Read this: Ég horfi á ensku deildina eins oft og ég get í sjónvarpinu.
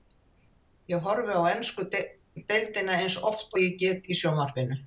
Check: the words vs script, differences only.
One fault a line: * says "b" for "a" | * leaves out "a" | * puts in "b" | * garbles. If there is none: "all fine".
all fine